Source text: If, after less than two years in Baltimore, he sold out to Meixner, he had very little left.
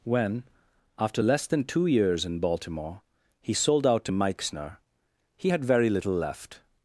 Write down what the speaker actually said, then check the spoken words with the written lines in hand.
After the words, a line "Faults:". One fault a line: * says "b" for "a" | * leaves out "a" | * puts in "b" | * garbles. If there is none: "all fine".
When, after less than two years in Baltimore, he sold out to Meixner, he had very little left.
Faults:
* says "When" for "If"